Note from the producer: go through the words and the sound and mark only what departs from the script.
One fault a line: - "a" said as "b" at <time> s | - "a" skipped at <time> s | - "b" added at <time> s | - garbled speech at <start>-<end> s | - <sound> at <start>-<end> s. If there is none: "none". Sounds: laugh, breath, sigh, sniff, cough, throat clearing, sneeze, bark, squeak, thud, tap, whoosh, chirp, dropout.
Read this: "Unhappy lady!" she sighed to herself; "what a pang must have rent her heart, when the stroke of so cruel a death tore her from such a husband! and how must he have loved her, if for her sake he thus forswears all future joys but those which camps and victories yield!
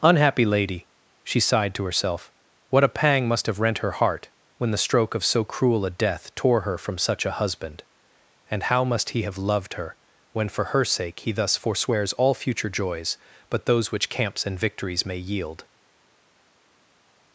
- "if" said as "when" at 10.3 s
- "may" added at 15.1 s